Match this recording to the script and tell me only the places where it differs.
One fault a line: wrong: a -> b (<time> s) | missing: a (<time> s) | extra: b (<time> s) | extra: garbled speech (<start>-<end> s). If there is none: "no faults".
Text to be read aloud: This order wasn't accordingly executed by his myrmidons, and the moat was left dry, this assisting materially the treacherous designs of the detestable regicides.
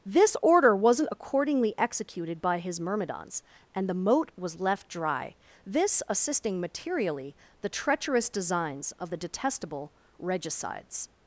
no faults